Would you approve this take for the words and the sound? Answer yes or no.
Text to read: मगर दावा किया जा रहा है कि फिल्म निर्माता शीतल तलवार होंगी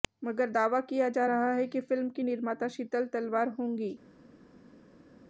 no